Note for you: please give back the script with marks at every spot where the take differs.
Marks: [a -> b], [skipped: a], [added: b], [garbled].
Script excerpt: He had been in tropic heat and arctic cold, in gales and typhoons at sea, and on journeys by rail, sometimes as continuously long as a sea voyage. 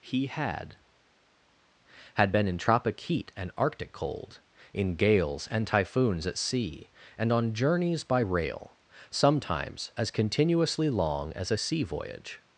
He had [added: had] been in tropic heat and arctic cold, in gales and typhoons at sea, and on journeys by rail, sometimes as continuously long as a sea voyage.